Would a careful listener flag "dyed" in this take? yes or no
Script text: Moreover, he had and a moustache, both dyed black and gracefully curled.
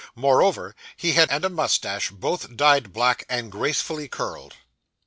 no